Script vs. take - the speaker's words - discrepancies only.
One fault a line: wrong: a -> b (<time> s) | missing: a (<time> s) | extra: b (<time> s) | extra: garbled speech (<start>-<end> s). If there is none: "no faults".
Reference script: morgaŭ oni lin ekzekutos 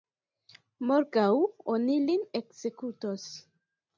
no faults